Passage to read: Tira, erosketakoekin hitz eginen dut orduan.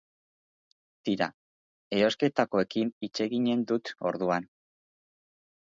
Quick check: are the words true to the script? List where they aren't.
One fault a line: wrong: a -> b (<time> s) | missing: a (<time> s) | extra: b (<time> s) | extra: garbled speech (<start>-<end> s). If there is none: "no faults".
no faults